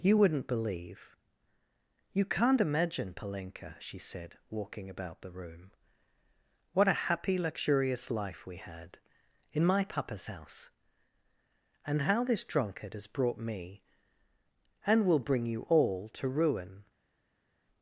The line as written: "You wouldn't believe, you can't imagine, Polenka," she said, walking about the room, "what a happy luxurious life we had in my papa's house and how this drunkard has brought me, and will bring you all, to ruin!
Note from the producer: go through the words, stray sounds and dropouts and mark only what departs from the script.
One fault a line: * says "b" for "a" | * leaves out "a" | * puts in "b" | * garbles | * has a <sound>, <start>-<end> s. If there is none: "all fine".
all fine